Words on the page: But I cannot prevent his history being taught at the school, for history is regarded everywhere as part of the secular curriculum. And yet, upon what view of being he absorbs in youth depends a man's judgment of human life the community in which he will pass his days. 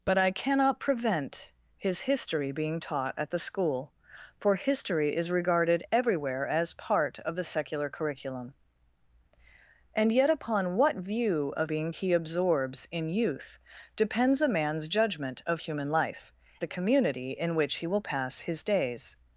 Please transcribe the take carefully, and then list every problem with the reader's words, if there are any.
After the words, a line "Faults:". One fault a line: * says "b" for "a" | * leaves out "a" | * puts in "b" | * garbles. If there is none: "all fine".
But I cannot prevent his history being taught at the school, for history is regarded everywhere as part of the secular curriculum. And yet, upon what view of being he absorbs in youth depends a man's judgment of human life the community in which he will pass his days.
Faults:
all fine